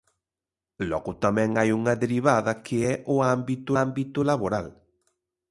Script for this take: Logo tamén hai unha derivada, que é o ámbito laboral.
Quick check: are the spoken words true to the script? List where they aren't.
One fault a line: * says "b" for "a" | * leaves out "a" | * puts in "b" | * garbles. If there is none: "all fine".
* puts in "ámbito"